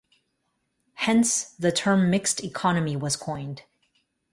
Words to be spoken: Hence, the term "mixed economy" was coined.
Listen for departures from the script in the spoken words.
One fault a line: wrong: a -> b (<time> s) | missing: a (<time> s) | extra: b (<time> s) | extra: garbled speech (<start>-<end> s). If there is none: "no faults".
no faults